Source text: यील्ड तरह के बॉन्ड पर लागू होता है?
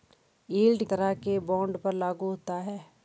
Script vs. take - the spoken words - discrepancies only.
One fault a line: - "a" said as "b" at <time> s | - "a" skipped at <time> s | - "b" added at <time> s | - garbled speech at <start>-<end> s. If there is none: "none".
none